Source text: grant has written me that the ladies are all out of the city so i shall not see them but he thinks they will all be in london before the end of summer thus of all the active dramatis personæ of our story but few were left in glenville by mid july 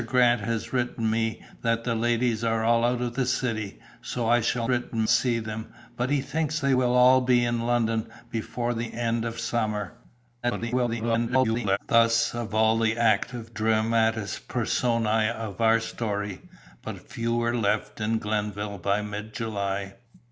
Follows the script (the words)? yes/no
no